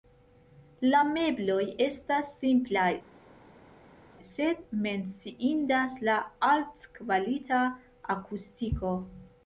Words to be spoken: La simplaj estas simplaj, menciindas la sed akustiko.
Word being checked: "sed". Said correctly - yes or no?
no